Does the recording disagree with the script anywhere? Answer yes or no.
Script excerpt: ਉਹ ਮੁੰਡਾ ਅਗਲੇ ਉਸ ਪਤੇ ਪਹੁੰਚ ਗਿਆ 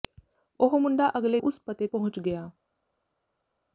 no